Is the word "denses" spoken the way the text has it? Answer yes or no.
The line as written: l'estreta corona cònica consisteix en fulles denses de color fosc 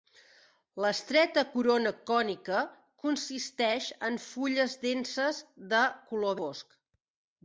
yes